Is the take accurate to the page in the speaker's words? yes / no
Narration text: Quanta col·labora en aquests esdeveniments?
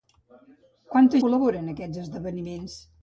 yes